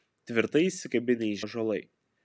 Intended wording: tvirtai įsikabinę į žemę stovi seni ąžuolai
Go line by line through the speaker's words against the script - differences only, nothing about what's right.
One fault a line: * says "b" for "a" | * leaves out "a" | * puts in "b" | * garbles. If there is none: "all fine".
* leaves out "žemę stovi seni"